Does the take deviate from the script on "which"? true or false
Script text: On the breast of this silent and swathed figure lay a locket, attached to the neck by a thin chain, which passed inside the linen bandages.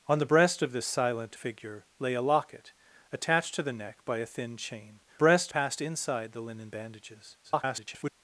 true